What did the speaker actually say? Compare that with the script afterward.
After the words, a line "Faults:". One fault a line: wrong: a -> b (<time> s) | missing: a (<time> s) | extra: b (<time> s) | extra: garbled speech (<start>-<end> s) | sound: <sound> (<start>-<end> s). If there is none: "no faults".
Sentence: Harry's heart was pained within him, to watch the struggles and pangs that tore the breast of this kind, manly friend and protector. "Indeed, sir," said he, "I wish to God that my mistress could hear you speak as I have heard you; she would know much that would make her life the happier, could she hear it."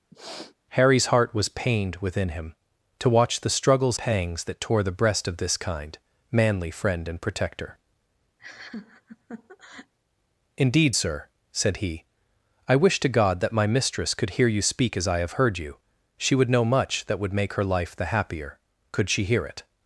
Harry's heart was pained within him, to watch the struggles pangs that tore the breast of this kind, manly friend and protector. "Indeed, sir," said he, "I wish to God that my mistress could hear you speak as I have heard you; she would know much that would make her life the happier, could she hear it."
Faults:
sound: sniff (0.1-0.5 s)
missing: and (4.0 s)
sound: laugh (8.4-9.9 s)